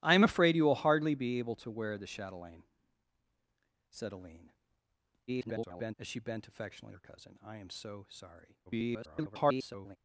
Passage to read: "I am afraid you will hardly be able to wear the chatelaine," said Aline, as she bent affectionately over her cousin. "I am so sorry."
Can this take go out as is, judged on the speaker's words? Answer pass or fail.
fail